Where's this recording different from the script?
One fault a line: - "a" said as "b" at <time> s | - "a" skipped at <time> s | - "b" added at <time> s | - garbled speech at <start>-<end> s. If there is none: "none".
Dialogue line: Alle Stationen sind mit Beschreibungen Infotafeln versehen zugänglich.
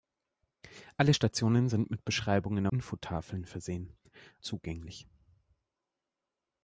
none